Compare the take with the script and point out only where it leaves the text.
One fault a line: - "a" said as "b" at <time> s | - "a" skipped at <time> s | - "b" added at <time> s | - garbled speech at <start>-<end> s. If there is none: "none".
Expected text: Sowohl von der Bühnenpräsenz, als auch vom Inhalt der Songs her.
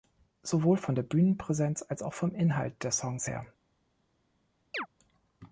none